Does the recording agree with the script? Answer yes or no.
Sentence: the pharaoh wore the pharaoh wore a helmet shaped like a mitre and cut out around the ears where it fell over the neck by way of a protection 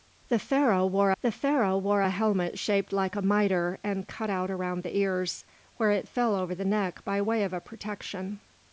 yes